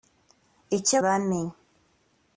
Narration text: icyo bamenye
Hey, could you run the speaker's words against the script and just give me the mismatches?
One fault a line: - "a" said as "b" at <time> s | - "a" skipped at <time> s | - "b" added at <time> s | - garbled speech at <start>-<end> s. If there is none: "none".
none